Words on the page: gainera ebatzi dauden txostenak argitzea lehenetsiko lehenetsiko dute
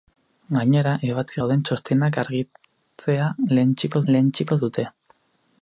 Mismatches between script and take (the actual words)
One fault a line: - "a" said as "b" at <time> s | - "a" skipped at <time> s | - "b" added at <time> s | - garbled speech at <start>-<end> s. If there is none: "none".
none